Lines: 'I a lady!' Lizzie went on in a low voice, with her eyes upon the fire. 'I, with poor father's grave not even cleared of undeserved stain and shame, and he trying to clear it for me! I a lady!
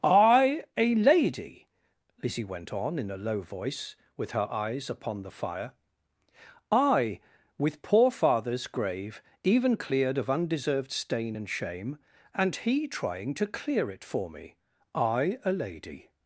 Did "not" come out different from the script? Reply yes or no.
yes